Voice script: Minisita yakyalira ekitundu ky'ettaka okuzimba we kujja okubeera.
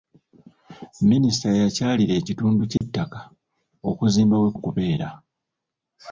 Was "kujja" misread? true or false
true